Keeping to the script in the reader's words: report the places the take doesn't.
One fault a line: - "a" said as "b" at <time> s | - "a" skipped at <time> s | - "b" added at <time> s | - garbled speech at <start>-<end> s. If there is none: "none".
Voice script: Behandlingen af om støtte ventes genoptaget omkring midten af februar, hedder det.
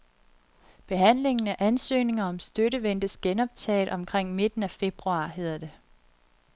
- "ansøgninger" added at 1.6 s